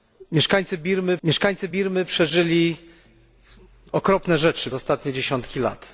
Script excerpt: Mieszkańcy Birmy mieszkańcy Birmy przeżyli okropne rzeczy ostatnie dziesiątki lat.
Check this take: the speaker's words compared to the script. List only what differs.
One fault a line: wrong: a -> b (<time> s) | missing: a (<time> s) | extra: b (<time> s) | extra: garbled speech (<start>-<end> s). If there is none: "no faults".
no faults